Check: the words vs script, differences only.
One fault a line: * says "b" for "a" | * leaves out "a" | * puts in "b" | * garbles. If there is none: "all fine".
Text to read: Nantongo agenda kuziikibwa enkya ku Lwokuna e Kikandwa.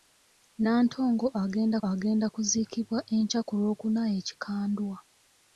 * puts in "agenda"